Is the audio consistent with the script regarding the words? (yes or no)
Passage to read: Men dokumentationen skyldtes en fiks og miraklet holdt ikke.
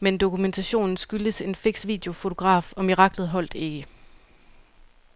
no